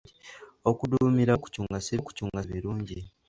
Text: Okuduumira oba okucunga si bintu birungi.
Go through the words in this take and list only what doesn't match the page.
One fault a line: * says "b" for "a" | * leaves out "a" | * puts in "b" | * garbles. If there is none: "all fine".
* leaves out "oba"
* says "okucunga" for "bintu"